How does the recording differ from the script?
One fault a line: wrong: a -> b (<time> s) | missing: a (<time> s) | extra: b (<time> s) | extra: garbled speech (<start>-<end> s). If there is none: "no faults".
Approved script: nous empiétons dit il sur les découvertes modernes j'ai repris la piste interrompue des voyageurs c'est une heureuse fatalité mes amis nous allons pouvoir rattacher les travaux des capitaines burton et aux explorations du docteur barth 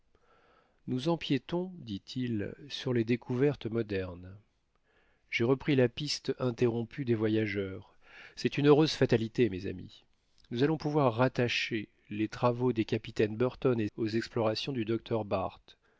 no faults